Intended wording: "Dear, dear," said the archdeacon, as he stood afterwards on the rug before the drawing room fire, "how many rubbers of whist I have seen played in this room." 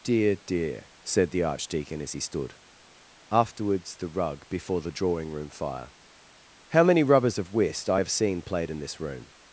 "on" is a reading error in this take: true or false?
true